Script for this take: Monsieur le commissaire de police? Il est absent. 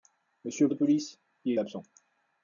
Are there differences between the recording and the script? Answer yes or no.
yes